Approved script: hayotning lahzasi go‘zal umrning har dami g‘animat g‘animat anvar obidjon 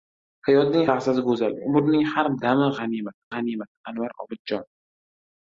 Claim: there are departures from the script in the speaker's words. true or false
false